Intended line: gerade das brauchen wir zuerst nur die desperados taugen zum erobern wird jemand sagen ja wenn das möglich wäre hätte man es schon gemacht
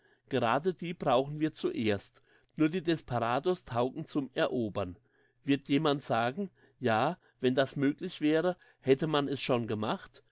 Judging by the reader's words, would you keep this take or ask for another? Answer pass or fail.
fail